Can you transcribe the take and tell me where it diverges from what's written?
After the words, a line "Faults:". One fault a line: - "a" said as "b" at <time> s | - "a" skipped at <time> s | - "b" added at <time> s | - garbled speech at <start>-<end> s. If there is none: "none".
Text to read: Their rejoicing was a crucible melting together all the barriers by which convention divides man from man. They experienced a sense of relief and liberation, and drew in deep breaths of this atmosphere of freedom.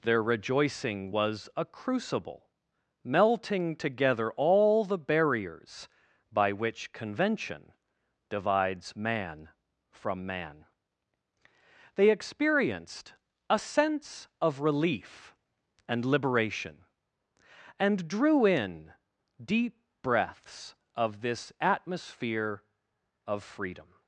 Their rejoicing was a crucible melting together all the barriers by which convention divides man from man. They experienced a sense of relief and liberation, and drew in deep breaths of this atmosphere of freedom.
Faults:
none